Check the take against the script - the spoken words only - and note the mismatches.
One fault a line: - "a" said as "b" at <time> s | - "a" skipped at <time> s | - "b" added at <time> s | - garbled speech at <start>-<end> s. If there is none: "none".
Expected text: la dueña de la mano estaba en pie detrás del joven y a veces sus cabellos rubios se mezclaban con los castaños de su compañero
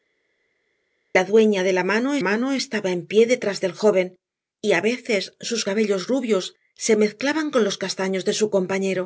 - "mano" added at 2.3 s